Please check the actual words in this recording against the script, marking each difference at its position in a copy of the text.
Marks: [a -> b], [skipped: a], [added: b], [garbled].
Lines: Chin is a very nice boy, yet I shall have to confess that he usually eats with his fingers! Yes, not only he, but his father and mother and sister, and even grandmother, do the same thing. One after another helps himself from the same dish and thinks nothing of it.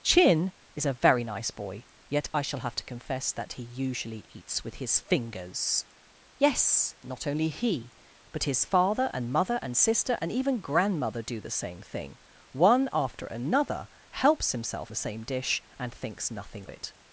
Chin is a very nice boy, yet I shall have to confess that he usually eats with his fingers! Yes, not only he, but his father and mother and sister, and even grandmother, do the same thing. One after another helps himself [skipped: from] the same dish and thinks nothing [skipped: of] it.